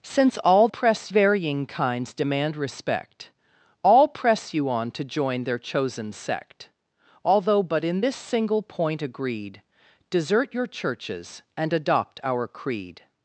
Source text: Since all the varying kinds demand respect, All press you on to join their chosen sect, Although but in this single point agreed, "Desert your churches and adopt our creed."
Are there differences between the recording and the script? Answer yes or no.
yes